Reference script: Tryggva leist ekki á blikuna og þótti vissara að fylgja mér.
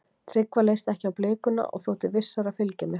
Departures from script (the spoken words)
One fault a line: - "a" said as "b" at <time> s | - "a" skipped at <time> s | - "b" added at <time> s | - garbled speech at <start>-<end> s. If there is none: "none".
none